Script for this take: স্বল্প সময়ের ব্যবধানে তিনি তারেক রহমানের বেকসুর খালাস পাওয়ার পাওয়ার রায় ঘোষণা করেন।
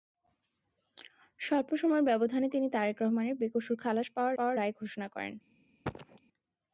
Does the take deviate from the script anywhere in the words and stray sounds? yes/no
yes